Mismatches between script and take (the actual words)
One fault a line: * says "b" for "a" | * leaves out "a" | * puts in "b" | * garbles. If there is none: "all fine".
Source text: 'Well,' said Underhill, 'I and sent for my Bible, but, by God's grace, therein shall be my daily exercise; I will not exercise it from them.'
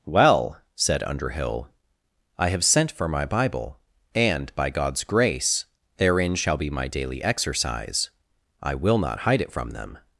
* says "have" for "and"
* says "and" for "but"
* says "hide" for "exercise"